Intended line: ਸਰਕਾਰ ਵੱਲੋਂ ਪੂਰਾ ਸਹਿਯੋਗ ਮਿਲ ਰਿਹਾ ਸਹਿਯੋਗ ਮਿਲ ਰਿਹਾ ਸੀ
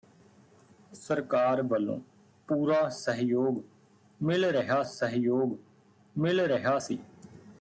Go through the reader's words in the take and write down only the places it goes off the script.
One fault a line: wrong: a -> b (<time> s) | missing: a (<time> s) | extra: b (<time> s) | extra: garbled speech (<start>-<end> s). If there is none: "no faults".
no faults